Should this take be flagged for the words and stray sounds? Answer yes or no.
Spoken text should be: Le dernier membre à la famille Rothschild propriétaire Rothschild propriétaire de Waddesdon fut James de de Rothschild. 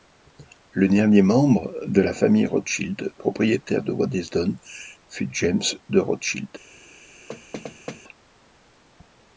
yes